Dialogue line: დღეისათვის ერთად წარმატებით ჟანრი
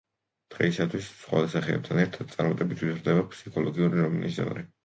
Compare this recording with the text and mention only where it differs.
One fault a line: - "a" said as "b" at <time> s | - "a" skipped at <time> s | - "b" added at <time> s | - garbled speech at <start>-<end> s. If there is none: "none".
- "სხვა სახეებთან" added at 1.2 s
- "ვითარდება ფსიქოლოგიური რომანის" added at 2.9 s